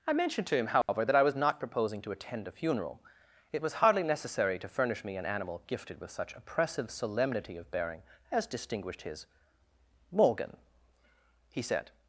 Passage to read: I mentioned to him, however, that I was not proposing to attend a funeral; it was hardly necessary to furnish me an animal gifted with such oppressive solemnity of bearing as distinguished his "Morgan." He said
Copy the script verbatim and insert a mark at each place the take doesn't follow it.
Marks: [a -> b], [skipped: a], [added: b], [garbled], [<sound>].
I mentioned to him, however, [dropout] that I was not proposing to attend a funeral; it was hardly necessary to furnish me an animal gifted with such oppressive solemnity of bearing as distinguished his "Morgan." He said